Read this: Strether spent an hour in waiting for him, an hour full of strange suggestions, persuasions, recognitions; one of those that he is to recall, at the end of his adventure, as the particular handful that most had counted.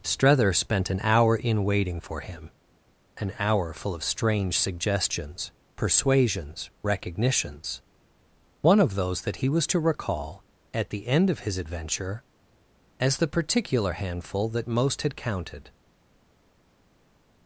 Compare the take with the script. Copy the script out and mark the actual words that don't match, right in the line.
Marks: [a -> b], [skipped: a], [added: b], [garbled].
Strether spent an hour in waiting for him, an hour full of strange suggestions, persuasions, recognitions; one of those that he [is -> was] to recall, at the end of his adventure, as the particular handful that most had counted.